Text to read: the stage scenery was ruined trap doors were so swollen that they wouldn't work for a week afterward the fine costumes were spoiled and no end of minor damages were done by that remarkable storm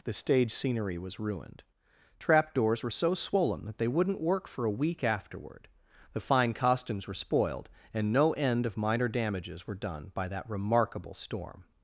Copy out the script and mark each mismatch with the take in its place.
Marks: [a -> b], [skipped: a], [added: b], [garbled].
the stage scenery was ruined trap doors were so swollen that they wouldn't work for a week afterward the fine costumes were spoiled and no end of minor damages were done by that remarkable storm